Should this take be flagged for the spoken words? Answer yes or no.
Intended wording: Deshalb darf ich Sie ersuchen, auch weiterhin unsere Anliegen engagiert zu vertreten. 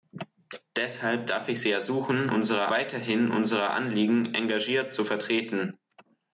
yes